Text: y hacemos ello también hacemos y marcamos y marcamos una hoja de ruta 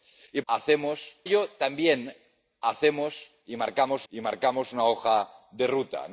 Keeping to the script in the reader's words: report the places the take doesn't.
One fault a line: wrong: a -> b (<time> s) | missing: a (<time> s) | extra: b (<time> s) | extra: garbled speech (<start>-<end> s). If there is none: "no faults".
no faults